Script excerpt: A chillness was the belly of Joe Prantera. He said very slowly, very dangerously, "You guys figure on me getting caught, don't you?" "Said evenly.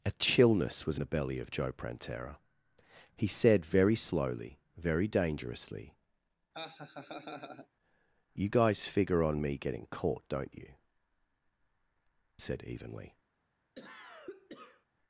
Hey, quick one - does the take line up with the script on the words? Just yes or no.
yes